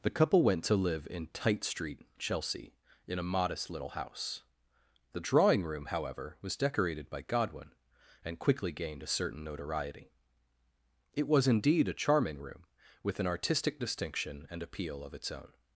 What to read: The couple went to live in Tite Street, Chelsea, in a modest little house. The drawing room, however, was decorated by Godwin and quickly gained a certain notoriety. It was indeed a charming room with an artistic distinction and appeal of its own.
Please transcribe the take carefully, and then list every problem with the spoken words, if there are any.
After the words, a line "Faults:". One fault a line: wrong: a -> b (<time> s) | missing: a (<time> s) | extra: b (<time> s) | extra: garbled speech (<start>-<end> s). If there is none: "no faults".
The couple went to live in Tite Street, Chelsea, in a modest little house. The drawing room, however, was decorated by Godwin and quickly gained a certain notoriety. It was indeed a charming room with an artistic distinction and appeal of its own.
Faults:
no faults